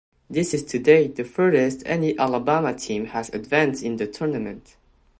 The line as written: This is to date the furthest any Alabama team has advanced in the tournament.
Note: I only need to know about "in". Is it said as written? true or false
true